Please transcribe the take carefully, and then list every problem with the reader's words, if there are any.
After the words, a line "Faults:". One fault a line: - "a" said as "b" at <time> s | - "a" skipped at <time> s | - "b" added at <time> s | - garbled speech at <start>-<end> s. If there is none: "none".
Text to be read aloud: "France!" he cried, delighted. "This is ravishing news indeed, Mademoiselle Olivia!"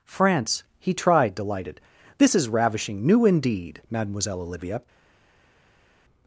"France!" he tried, delighted. "This is ravishing new indeed, Mademoiselle Olivia!"
Faults:
- "cried" said as "tried" at 0.9 s
- "news" said as "new" at 3.0 s